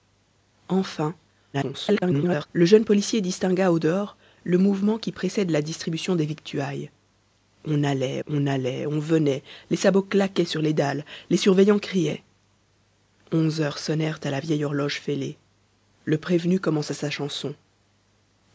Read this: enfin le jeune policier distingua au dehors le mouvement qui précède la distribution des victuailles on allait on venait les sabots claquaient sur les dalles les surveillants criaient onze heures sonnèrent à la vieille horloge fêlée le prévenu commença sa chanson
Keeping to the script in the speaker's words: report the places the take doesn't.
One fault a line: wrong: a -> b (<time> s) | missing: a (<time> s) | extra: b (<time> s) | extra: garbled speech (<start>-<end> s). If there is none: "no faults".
extra: garbled speech (1.5-2.5 s)
extra: allait on (8.4 s)